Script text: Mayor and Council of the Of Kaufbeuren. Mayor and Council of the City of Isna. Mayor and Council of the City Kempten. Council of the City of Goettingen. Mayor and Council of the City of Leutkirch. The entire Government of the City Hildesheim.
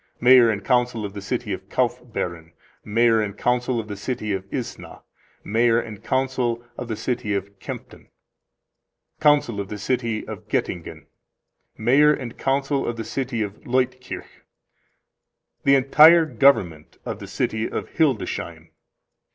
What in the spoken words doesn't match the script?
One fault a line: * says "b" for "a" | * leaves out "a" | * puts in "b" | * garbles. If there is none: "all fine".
* puts in "City"
* puts in "of"
* puts in "of"